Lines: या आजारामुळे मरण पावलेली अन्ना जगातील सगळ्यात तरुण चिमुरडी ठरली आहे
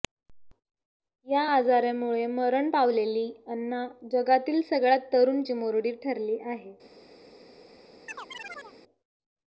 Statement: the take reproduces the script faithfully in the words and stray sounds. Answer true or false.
false